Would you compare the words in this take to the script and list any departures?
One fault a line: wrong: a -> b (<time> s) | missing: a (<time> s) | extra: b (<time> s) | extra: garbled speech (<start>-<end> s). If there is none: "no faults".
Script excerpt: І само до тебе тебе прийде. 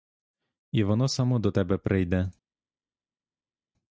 extra: воно (0.8 s)
missing: тебе (1.8 s)